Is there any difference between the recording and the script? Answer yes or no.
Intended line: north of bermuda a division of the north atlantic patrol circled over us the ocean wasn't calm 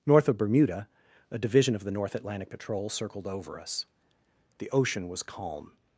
yes